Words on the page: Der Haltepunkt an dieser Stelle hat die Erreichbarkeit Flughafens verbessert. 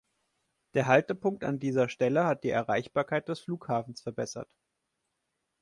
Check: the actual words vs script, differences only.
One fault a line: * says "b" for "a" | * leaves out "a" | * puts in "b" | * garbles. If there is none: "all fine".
* puts in "des"